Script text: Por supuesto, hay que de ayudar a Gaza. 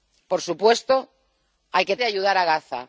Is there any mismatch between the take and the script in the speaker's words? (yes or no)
no